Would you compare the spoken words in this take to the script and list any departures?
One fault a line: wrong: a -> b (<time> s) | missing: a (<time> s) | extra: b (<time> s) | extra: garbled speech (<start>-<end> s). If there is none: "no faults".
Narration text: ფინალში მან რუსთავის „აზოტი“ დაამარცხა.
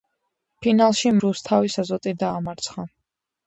missing: მან (1.1 s)